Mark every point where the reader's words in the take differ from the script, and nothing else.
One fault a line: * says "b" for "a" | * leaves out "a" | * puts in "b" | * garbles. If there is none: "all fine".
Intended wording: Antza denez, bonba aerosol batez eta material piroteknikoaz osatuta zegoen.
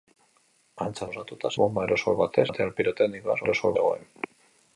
* says "osatuta" for "denez"
* leaves out "eta"
* says "aerosol" for "osatuta"